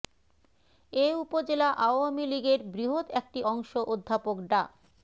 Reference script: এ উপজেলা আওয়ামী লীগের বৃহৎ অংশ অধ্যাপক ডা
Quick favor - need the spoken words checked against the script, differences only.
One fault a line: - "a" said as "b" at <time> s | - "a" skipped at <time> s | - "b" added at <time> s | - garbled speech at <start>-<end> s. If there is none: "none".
- "একটি" added at 3.2 s